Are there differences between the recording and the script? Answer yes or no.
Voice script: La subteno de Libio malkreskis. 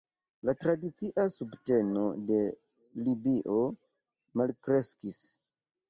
yes